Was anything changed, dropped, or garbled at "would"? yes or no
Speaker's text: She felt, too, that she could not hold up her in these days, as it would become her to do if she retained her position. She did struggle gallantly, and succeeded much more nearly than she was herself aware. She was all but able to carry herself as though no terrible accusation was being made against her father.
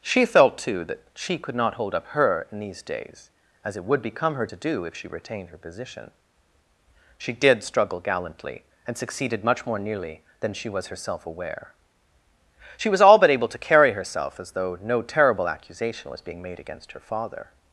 no